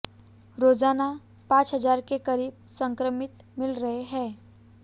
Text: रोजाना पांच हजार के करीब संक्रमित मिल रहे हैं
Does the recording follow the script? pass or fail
pass